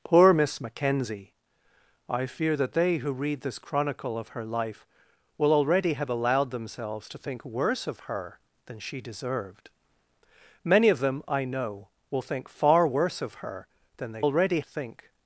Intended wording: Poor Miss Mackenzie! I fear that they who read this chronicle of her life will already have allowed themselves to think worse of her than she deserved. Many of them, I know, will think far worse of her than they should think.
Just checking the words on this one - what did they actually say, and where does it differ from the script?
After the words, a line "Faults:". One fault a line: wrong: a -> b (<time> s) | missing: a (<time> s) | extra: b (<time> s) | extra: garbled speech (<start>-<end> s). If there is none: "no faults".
Poor Miss Mackenzie! I fear that they who read this chronicle of her life will already have allowed themselves to think worse of her than she deserved. Many of them, I know, will think far worse of her than they already think.
Faults:
wrong: should -> already (14.2 s)